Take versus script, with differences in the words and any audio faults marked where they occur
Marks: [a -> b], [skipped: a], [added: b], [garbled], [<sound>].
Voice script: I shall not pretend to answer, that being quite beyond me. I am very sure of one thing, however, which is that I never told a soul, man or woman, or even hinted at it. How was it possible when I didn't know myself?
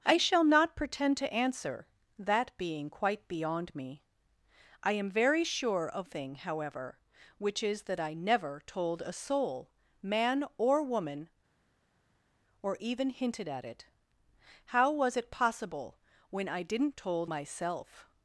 I shall not pretend to answer, that being quite beyond me. I am very sure of [skipped: one] thing, however, which is that I never told a soul, man or woman, or even hinted at it. How was it possible when I didn't [know -> told] myself?